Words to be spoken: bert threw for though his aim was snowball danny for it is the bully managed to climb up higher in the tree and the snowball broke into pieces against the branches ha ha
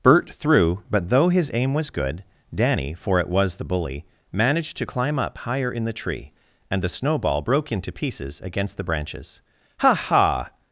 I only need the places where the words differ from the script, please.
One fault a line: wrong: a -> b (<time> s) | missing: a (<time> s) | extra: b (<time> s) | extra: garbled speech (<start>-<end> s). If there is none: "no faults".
wrong: for -> but (0.9 s)
wrong: snowball -> good (1.9 s)
wrong: is -> was (3.3 s)